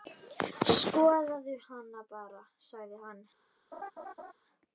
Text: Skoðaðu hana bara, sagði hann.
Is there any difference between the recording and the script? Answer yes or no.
no